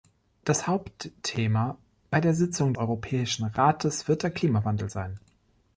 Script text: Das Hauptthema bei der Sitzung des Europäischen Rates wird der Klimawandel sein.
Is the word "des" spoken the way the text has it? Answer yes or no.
no